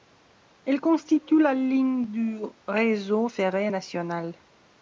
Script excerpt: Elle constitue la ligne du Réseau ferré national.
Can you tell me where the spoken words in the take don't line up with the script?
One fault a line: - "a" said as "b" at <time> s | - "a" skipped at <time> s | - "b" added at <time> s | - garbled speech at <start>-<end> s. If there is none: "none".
none